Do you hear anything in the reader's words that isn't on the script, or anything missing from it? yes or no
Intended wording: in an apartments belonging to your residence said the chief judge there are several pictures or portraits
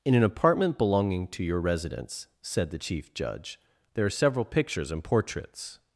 yes